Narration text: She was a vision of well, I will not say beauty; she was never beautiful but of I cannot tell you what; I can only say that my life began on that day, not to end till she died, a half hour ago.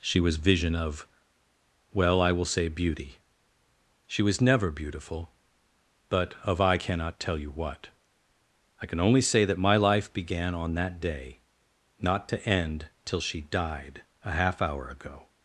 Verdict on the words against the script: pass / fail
fail